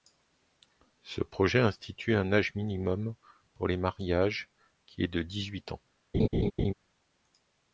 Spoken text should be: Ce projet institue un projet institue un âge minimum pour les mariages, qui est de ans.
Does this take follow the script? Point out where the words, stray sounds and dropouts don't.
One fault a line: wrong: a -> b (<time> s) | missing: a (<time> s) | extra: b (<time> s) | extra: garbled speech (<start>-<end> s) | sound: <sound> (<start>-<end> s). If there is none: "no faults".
missing: projet institue un (2.3 s)
extra: dix huit (5.2 s)
sound: laugh (6.1-6.7 s)